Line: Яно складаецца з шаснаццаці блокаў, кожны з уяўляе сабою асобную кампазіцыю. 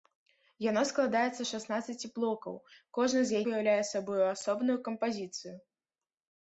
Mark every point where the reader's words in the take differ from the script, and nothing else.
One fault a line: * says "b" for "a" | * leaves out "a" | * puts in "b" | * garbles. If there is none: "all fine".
all fine